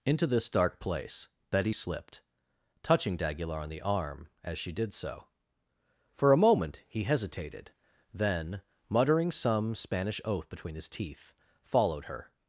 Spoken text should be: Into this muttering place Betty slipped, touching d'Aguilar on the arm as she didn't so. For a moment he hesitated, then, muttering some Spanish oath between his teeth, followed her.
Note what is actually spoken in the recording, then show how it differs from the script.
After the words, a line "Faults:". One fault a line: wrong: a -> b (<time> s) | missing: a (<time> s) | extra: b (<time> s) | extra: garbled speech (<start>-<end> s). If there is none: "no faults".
Into this dark place Betty slipped, touching d'Aguilar on the arm as she did so. For a moment he hesitated, then, muttering some Spanish oath between his teeth, followed her.
Faults:
wrong: muttering -> dark (0.5 s)
wrong: didn't -> did (4.7 s)